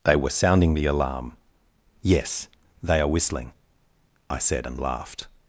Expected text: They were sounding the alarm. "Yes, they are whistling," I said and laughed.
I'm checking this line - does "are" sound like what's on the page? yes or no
yes